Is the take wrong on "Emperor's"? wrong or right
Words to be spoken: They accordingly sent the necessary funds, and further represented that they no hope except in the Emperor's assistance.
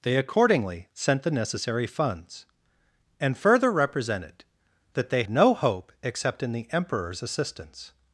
right